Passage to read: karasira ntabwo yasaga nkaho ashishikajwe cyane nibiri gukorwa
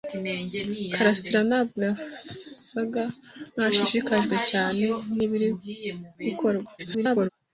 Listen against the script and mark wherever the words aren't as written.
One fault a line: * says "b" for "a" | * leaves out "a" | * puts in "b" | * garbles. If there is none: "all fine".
* garbles